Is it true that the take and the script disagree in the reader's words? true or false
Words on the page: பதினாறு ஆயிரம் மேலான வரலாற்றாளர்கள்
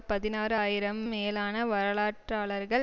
false